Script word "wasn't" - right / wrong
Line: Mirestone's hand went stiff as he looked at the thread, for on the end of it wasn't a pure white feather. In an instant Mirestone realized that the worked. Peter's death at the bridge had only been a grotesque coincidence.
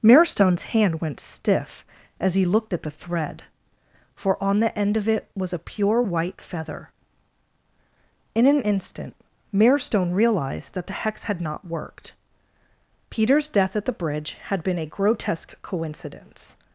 wrong